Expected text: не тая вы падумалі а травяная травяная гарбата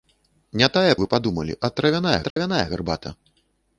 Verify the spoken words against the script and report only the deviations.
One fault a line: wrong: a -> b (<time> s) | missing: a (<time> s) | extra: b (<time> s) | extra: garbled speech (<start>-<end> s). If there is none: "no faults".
no faults